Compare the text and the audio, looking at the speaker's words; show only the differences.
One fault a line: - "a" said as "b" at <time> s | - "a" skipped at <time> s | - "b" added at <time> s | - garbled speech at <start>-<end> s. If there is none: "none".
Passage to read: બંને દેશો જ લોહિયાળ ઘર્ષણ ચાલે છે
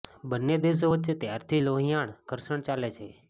- "વચ્ચે ત્યારથી" added at 0.9 s